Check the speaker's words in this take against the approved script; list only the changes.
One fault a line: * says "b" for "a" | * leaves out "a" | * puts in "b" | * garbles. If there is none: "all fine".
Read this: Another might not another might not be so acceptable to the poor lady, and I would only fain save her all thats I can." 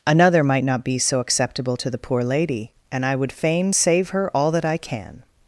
* leaves out "another might not"
* leaves out "only"
* says "that" for "thats"